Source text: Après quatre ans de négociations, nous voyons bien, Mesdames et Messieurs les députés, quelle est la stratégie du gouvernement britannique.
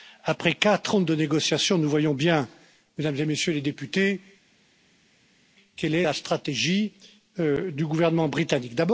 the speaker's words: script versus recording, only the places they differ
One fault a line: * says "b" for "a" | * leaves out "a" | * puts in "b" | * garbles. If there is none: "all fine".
all fine